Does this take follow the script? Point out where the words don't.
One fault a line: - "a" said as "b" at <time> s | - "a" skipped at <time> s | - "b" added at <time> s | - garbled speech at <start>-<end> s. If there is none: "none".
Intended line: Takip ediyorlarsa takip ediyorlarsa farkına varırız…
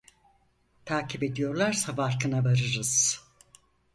- "takip ediyorlarsa" skipped at 1.9 s